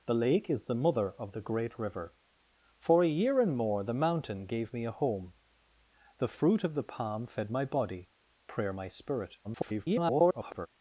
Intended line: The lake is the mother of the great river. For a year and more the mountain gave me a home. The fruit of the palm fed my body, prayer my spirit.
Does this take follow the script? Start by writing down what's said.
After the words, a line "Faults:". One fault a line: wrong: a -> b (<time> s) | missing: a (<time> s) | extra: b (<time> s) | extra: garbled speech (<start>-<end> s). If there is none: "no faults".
The lake is the mother of the great river. For a year and more the mountain gave me a home. The fruit of the palm fed my body, prayer my spirit. [garbled]
Faults:
extra: garbled speech (9.4-10.7 s)